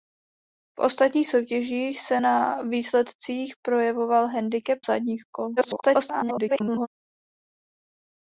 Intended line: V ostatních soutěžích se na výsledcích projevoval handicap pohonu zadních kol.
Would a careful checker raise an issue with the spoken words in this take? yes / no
yes